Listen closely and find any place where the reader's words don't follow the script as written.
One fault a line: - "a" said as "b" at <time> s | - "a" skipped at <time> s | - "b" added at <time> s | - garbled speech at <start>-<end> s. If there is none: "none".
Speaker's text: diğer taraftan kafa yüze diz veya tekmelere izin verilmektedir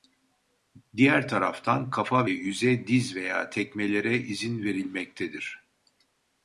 none